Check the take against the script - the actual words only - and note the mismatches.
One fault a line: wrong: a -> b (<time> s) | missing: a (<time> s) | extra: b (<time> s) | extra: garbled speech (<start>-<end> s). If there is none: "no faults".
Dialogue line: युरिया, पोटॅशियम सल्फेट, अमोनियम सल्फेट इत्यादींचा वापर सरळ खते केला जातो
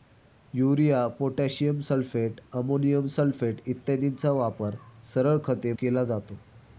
no faults